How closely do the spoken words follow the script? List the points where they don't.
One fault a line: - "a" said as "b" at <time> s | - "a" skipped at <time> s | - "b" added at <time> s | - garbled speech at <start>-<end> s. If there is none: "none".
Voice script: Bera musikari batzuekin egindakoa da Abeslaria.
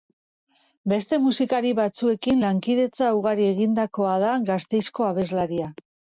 - "Bera" said as "Beste" at 0.9 s
- "lankidetza ugari" added at 2.4 s
- "Gasteizko" added at 4.5 s